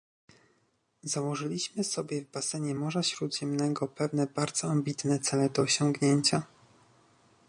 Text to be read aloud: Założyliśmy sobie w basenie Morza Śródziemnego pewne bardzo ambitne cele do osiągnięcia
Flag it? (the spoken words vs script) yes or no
no